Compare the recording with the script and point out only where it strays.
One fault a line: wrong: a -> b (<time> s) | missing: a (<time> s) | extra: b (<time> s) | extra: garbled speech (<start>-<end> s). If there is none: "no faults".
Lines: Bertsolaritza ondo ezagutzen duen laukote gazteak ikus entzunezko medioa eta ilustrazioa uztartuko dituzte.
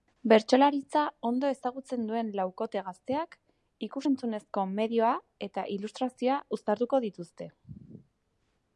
no faults